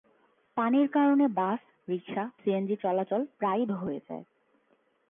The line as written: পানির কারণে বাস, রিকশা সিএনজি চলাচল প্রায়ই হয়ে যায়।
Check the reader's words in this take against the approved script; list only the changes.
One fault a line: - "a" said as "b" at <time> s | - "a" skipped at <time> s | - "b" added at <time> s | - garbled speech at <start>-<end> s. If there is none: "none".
none